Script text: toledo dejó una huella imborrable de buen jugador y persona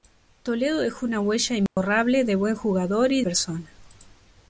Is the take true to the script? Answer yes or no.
yes